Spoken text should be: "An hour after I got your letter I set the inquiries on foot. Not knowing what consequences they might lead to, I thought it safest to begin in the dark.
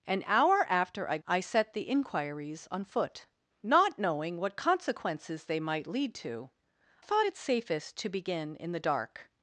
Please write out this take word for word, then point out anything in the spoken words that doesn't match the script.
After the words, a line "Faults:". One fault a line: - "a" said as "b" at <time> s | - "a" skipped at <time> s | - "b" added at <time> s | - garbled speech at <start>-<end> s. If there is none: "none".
"An hour after I I set the inquiries on foot. Not knowing what consequences they might lead to, thought it safest to begin in the dark.
Faults:
- "got your letter" skipped at 1.2 s
- "I" skipped at 6.5 s